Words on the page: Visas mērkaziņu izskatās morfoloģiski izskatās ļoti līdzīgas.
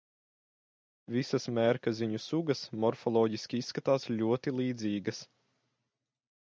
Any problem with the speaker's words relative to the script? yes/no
yes